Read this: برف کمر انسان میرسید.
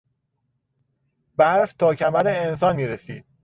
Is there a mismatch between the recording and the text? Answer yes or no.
yes